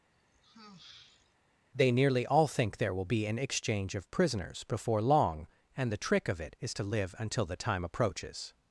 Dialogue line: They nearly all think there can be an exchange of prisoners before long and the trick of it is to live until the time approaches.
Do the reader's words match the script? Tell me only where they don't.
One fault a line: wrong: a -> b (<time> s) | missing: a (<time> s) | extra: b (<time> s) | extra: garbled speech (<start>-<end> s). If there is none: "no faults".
wrong: can -> will (2.9 s)